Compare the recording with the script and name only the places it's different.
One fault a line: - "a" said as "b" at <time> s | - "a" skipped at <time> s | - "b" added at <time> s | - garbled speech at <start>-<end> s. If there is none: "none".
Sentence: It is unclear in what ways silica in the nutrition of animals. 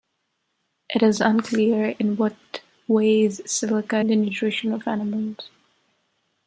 none